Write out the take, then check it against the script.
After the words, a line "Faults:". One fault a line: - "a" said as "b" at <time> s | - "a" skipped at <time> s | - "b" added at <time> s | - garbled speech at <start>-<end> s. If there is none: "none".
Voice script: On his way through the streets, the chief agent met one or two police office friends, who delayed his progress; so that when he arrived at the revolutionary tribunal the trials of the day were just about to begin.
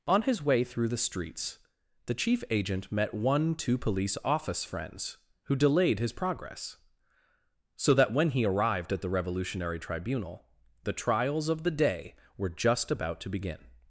On his way through the streets, the chief agent met one two police office friends, who delayed his progress; so that when he arrived at the revolutionary tribunal the trials of the day were just about to begin.
Faults:
- "or" skipped at 3.5 s